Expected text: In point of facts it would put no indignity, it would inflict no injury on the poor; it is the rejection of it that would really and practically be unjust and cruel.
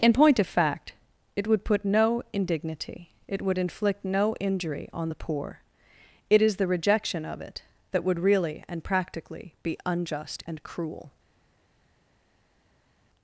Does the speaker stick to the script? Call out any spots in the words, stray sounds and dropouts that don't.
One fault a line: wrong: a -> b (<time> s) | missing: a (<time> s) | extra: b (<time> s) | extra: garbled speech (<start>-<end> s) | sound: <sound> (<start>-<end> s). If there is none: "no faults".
wrong: facts -> fact (0.5 s)